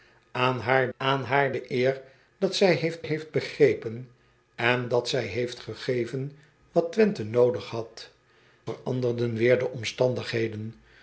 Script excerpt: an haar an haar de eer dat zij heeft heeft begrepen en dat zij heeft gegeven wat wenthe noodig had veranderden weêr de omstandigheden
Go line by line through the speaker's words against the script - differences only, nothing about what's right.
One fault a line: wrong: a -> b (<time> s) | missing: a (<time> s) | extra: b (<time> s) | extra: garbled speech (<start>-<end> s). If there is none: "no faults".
no faults